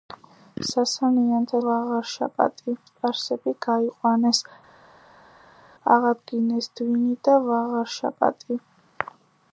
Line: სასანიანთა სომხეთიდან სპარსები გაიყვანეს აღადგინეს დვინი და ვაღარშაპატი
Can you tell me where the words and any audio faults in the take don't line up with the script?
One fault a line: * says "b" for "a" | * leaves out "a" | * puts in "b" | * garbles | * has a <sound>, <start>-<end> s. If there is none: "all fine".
* says "ვაღარშაპატი" for "სომხეთიდან"